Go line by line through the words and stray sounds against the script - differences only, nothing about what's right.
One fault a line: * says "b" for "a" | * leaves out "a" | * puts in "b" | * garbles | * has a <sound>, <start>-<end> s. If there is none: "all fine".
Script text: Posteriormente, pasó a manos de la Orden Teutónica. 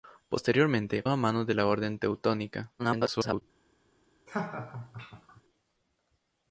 * leaves out "pasó"
* garbles
* has a laugh, 4.3-5.4 s